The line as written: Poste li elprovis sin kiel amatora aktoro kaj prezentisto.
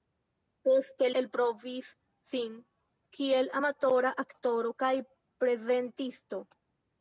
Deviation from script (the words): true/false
true